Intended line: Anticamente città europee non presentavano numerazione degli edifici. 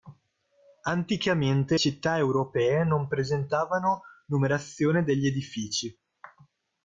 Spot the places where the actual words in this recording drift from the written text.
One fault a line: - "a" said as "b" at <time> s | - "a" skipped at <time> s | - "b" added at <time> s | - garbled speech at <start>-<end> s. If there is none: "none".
none